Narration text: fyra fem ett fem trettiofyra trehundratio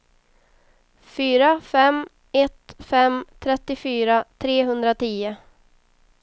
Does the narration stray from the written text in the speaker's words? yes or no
no